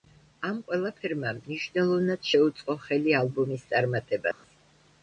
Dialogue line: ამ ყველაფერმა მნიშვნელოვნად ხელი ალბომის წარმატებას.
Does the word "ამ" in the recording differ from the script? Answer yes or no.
no